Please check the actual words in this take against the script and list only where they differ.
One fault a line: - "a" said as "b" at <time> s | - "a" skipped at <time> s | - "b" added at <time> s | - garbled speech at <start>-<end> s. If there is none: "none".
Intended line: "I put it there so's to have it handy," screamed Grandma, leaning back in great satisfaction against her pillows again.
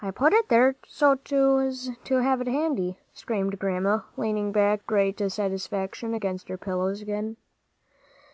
- "in" skipped at 4.8 s